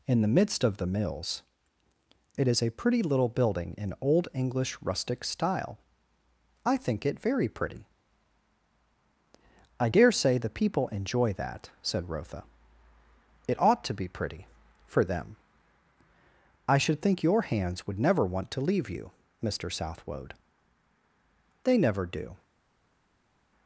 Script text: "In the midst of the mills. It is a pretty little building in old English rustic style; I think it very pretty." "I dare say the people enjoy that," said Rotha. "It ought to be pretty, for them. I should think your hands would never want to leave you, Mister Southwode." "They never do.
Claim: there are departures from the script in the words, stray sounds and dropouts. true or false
false